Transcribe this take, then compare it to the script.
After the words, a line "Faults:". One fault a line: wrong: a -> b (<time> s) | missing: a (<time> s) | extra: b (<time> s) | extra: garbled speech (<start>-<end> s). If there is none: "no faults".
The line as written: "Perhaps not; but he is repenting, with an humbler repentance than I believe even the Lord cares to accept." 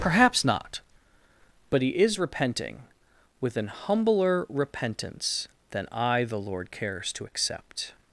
"Perhaps not; but he is repenting, with an humbler repentance than I the Lord cares to accept."
Faults:
missing: believe even (6.2 s)